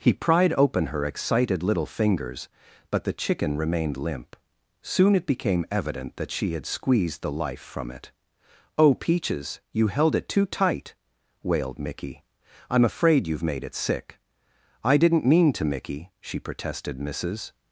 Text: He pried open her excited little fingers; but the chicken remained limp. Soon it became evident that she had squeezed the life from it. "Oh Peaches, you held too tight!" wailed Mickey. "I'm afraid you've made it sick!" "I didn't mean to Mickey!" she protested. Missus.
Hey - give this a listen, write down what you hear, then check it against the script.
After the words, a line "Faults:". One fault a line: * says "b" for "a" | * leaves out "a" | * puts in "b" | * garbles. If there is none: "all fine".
He pried open her excited little fingers; but the chicken remained limp. Soon it became evident that she had squeezed the life from it. "Oh Peaches, you held it too tight!" wailed Mickey. "I'm afraid you've made it sick!" "I didn't mean to Mickey!" she protested. Missus.
Faults:
* puts in "it"